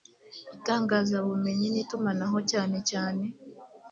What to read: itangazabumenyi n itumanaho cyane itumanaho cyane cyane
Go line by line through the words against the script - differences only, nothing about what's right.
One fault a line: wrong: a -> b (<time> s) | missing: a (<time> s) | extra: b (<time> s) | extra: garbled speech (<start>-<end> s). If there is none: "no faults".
missing: itumanaho cyane (2.8 s)